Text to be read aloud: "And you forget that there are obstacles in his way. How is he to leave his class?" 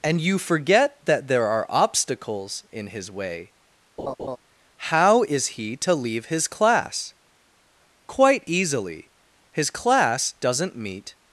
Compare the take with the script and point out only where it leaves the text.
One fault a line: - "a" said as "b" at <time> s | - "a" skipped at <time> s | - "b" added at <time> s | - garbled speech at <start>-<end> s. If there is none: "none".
- "Quite easily His class doesn't meet" added at 8.1 s